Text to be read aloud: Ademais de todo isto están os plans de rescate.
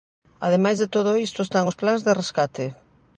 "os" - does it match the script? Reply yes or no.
yes